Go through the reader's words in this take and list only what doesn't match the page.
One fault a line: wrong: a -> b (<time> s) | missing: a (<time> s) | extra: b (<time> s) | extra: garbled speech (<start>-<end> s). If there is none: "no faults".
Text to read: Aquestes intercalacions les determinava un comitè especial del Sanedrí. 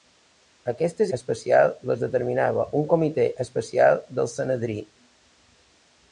wrong: intercalacions -> especial (1.2 s)